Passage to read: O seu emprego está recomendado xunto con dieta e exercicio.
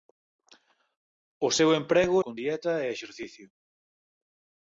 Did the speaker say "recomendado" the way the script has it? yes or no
no